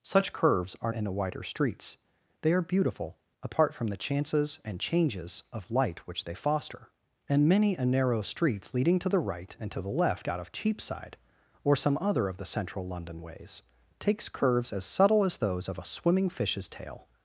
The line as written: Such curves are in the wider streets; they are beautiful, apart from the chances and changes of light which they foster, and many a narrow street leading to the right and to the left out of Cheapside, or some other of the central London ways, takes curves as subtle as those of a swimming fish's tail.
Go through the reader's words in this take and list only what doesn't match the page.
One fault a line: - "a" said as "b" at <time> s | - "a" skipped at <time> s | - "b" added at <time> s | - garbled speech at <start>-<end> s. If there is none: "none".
none